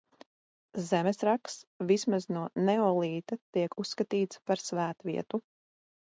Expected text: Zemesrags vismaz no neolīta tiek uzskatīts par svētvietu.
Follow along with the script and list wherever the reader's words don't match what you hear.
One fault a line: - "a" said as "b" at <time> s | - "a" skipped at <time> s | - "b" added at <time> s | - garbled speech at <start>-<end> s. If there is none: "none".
none